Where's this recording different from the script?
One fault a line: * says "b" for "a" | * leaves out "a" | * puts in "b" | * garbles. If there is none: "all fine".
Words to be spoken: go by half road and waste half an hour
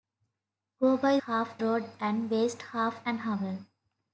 all fine